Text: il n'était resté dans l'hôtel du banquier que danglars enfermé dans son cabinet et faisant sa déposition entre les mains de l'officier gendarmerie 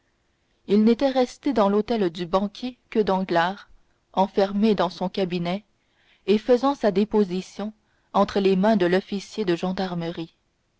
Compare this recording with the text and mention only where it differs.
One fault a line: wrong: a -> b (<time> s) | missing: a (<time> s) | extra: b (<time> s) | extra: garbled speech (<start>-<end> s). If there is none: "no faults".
extra: de (9.4 s)